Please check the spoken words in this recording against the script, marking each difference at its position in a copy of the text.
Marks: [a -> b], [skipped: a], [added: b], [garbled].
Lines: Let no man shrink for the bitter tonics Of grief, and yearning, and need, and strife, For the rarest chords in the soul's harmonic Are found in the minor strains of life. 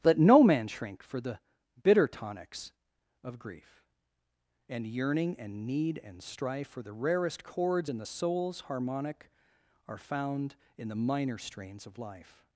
Let no man shrink for the bitter tonics Of grief, and yearning, and need, and strife, For the rarest chords in the soul's harmonic Are found in the minor strains of life.